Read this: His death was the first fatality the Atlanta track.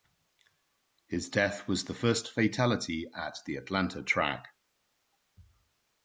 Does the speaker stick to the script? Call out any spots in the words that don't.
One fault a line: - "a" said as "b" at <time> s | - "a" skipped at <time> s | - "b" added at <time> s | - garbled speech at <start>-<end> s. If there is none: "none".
- "at" added at 3.1 s